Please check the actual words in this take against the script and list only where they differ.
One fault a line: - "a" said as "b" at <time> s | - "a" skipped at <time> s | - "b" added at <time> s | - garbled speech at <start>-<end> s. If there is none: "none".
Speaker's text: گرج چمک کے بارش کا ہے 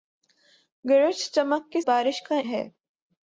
none